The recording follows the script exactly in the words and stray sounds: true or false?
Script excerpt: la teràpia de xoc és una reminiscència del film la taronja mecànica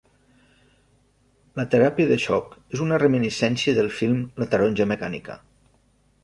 true